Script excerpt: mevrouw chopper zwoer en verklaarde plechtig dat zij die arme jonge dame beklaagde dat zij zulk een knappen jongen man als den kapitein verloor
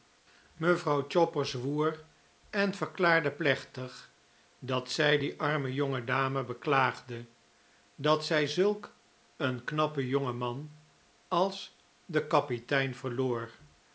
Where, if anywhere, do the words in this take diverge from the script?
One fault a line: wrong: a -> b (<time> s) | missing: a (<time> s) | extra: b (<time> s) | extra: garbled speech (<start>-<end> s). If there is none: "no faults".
no faults